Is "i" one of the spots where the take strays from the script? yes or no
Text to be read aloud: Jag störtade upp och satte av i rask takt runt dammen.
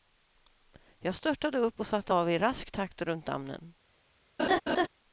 no